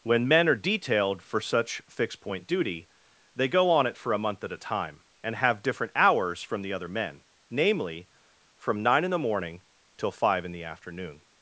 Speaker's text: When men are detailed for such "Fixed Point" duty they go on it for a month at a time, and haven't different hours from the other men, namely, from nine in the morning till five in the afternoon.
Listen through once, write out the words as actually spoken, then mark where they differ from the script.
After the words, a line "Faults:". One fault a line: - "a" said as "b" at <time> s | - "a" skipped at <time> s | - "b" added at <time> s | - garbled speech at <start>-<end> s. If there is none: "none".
When men are detailed for such "Fixed Point" duty they go on it for a month at a time, and have different hours from the other men, namely, from nine in the morning till five in the afternoon.
Faults:
- "haven't" said as "have" at 5.3 s